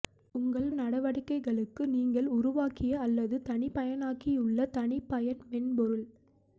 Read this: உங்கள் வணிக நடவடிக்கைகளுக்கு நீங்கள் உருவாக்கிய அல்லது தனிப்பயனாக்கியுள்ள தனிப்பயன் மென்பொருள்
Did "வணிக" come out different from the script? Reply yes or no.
yes